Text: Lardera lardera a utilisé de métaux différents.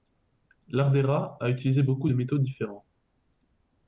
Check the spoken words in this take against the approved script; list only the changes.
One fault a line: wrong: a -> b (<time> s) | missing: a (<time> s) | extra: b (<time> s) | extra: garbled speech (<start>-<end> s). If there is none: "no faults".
missing: lardera (1.4 s)
extra: beaucoup (1.8 s)